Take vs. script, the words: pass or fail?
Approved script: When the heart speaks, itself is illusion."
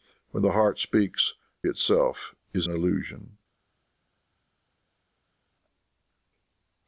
pass